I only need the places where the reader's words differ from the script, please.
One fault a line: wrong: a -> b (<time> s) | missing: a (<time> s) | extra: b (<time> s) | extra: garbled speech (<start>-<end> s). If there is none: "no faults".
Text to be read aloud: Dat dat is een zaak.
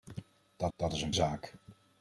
no faults